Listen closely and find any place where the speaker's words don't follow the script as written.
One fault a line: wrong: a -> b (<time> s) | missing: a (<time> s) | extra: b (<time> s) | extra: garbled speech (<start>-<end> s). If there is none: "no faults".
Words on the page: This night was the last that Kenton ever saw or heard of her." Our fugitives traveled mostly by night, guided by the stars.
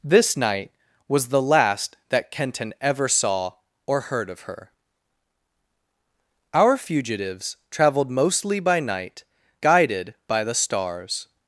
no faults